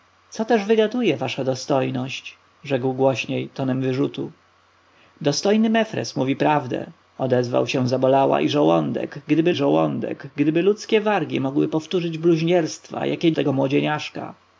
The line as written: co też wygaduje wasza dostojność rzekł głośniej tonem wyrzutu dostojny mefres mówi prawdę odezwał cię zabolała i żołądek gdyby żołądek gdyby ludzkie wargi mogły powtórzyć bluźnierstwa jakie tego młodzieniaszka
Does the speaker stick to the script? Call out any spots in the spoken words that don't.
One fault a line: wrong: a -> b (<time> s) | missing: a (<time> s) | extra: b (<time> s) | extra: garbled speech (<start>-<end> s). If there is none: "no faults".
no faults